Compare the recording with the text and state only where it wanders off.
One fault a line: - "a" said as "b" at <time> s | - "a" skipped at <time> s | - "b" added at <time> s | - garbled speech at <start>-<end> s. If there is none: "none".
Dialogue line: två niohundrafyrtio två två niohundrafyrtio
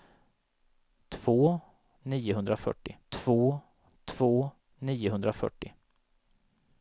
none